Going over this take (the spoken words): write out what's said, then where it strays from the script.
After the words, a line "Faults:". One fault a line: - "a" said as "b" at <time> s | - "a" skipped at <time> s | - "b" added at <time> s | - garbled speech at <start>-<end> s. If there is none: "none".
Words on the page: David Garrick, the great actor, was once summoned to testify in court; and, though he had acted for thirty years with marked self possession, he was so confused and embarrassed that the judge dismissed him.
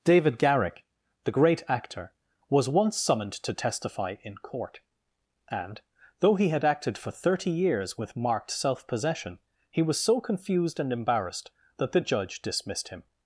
David Garrick, the great actor, was once summoned to testify in court; and, though he had acted for thirty years with marked self possession, he was so confused and embarrassed that the judge dismissed him.
Faults:
none